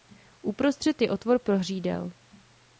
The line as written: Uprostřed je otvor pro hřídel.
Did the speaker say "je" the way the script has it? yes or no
yes